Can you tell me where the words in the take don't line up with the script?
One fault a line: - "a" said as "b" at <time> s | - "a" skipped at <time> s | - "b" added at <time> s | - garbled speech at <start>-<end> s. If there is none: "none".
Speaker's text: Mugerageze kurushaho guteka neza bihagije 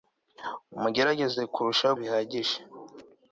- "guteka neza" skipped at 1.9 s